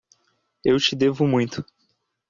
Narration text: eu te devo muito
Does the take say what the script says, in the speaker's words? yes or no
yes